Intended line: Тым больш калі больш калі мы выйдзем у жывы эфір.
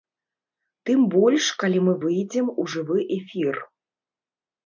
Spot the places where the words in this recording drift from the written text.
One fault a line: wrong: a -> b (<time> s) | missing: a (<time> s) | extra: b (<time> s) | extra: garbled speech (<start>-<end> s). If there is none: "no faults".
missing: больш калі (1.8 s)